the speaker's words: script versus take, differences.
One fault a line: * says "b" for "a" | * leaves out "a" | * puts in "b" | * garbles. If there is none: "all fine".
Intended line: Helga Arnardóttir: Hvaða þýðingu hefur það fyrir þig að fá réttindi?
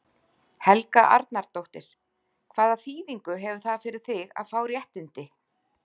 all fine